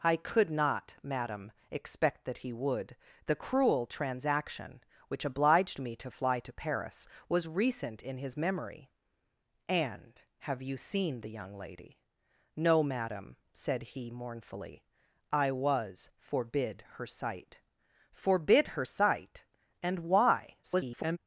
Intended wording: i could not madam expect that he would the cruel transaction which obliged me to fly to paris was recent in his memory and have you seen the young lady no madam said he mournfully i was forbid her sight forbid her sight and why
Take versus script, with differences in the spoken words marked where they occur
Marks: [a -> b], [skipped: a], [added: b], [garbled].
i could not madam expect that he would the cruel transaction which obliged me to fly to paris was recent in his memory and have you seen the young lady no madam said he mournfully i was forbid her sight forbid her sight and why [garbled]